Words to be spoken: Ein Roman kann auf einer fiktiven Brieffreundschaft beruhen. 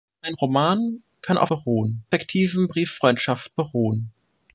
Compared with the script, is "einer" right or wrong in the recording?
wrong